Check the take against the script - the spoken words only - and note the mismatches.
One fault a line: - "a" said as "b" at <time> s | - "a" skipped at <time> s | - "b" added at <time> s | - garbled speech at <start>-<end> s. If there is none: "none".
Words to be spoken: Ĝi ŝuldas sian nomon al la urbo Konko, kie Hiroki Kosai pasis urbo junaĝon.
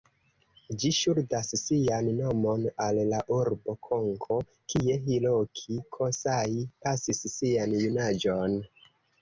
- "urbo" said as "sian" at 7.4 s